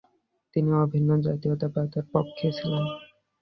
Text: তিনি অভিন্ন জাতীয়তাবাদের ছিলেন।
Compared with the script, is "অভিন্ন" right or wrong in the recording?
right